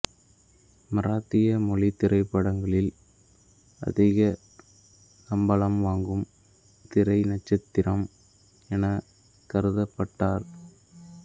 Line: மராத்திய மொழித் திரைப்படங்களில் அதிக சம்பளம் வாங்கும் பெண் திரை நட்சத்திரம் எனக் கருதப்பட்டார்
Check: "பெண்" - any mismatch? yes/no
yes